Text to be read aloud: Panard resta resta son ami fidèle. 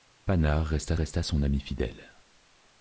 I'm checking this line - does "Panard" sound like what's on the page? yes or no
yes